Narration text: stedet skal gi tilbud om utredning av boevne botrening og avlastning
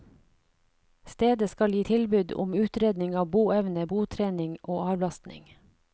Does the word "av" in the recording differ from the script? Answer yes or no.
no